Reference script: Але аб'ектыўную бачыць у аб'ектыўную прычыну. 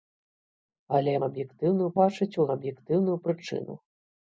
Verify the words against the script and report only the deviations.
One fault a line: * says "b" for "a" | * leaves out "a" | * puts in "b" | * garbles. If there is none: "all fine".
all fine